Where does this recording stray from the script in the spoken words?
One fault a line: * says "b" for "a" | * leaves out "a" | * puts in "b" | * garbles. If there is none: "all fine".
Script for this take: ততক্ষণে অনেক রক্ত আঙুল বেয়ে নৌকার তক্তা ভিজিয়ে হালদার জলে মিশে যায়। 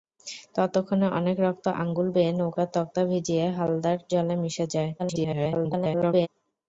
* garbles